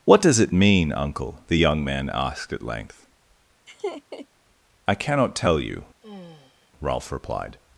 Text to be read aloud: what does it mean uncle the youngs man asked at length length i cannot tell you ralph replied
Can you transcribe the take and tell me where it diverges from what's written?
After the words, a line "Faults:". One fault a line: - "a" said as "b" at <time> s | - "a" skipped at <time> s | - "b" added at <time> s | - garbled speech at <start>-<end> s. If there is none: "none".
what does it mean uncle the young man asked at length i cannot tell you ralph replied
Faults:
- "youngs" said as "young" at 1.6 s
- "length" skipped at 3.0 s